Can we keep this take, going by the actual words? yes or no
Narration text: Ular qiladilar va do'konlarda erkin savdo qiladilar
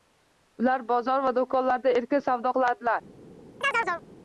no